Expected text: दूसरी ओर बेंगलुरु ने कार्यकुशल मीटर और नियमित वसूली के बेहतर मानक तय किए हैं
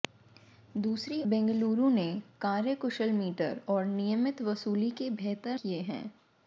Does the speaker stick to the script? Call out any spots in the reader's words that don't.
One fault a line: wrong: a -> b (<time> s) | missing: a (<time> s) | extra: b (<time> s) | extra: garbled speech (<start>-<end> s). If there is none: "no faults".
missing: ओर (1.2 s)
missing: मानक तय (5.6 s)